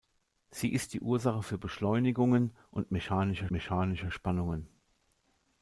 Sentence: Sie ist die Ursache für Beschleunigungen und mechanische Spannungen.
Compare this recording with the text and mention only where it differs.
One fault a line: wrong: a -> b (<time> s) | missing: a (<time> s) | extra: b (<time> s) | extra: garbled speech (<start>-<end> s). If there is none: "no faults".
extra: mechanische (3.5 s)